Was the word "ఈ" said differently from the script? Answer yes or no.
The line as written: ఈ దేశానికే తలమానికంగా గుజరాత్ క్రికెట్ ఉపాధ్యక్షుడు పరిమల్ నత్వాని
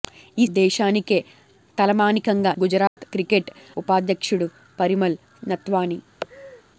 no